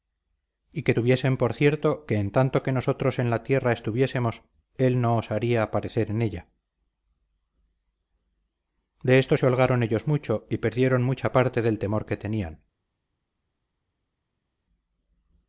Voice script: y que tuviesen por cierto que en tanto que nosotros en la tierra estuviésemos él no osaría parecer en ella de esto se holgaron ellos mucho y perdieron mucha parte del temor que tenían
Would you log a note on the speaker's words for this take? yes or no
no